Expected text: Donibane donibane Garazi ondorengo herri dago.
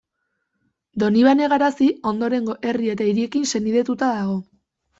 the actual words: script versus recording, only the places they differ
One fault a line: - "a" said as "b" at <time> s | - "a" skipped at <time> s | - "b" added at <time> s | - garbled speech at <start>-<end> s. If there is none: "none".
- "donibane" skipped at 1.5 s
- "eta hiriekin senidetuta" added at 2.9 s